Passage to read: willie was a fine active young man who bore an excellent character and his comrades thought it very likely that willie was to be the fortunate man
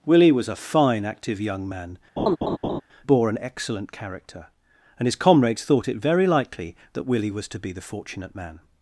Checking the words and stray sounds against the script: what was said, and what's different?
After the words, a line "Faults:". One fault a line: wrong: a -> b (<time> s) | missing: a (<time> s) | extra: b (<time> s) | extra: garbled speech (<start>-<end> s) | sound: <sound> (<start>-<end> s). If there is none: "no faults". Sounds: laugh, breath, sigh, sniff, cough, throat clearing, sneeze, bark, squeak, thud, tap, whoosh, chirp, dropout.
willie was a fine active young man bore an excellent character and his comrades thought it very likely that willie was to be the fortunate man
Faults:
missing: who (2.0 s)
sound: laugh (2.2-2.8 s)